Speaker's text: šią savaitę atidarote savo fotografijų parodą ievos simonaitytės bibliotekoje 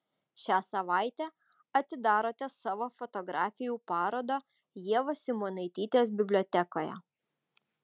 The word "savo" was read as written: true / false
true